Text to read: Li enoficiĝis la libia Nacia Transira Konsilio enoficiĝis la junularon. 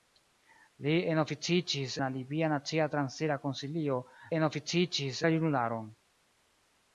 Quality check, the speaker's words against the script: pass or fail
pass